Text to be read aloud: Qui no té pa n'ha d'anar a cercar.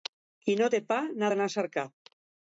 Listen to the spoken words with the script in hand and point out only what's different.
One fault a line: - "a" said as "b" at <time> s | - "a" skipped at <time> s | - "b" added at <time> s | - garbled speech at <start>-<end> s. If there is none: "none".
none